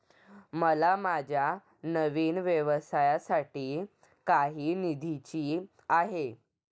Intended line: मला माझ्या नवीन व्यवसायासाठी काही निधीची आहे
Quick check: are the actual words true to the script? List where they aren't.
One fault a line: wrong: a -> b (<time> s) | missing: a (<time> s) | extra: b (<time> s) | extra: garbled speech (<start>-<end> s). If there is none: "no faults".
no faults